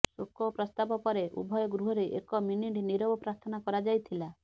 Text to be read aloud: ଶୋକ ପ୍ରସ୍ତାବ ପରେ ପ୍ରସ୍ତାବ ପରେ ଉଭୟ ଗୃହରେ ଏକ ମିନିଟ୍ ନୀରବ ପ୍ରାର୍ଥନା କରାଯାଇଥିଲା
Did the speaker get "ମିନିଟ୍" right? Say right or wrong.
right